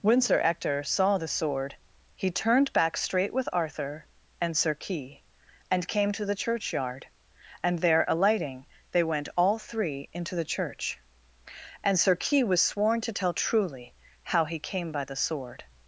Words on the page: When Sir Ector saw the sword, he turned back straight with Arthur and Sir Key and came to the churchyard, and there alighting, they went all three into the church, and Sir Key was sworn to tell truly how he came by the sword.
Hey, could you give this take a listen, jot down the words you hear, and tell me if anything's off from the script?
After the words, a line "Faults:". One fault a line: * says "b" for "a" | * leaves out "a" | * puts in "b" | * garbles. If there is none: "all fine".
When Sir Ector saw the sword, he turned back straight with Arthur and Sir Key and came to the churchyard, and there alighting, they went all three into the church, and Sir Key was sworn to tell truly how he came by the sword.
Faults:
all fine